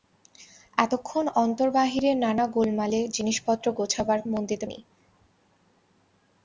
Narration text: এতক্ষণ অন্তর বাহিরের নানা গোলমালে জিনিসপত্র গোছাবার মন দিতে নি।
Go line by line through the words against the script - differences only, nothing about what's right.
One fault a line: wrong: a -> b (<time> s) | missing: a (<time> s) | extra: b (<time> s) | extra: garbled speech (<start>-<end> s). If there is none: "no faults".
no faults